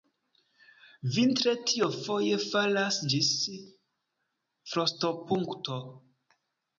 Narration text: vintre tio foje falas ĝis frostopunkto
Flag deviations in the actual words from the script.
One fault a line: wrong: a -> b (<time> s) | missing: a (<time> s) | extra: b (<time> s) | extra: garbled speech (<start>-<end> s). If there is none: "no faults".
no faults